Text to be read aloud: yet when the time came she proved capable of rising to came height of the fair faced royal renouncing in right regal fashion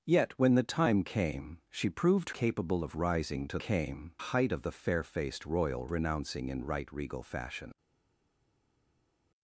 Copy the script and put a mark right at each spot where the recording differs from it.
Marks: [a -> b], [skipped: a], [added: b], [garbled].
yet when the time came she proved capable of rising to came height of the fair faced royal renouncing in right regal fashion